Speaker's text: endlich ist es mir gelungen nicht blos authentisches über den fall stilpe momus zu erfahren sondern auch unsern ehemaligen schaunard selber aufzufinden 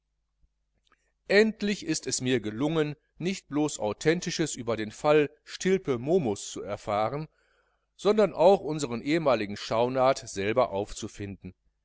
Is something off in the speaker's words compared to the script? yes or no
no